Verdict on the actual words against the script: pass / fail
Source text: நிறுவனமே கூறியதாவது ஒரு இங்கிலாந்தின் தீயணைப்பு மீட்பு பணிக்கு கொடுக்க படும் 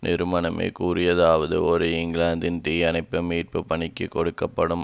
pass